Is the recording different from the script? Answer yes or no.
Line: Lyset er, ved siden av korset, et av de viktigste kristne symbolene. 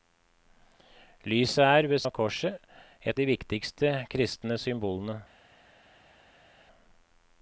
yes